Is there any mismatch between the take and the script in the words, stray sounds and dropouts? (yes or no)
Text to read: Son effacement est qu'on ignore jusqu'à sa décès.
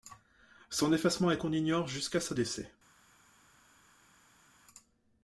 no